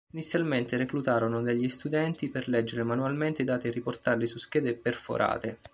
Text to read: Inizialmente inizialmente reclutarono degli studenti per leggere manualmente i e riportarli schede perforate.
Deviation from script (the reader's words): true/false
true